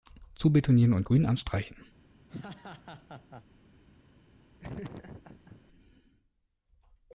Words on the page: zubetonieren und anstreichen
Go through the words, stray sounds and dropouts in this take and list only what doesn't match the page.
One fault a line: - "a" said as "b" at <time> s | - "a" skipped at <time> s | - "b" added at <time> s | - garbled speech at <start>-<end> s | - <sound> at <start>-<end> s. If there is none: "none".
- "grün" added at 1.0 s
- laugh at 2.3-3.4 s
- laugh at 4.6-5.6 s